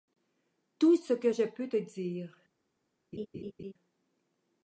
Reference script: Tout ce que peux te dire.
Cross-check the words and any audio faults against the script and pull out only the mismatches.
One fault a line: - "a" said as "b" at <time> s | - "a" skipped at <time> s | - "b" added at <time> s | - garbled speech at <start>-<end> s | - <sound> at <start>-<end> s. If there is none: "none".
- "je" added at 1.3 s
- laugh at 3.1-3.7 s